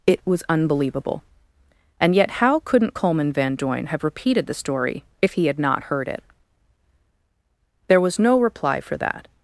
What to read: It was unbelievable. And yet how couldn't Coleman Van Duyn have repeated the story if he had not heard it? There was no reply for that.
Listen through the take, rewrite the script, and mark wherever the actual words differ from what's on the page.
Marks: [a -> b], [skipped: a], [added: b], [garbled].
It was unbelievable. And yet how couldn't Coleman Van Duyn have repeated the story if he had not heard it? There was no reply for that.